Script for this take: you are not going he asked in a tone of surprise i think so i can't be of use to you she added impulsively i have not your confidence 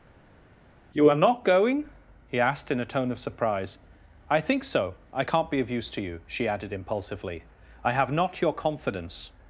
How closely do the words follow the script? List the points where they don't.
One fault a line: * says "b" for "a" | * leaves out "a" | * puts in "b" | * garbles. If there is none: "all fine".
all fine